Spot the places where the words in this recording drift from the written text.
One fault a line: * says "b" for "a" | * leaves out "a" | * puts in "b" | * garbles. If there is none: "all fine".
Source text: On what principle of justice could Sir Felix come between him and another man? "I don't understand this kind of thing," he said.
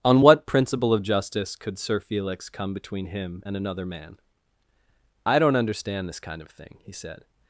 all fine